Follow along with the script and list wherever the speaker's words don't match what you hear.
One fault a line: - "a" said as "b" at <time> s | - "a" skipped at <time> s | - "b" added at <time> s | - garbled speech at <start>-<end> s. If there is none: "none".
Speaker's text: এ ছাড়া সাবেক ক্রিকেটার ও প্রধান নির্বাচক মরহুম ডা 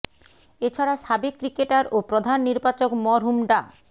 none